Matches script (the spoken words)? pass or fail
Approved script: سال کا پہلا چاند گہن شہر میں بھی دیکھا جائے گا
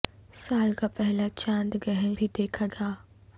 fail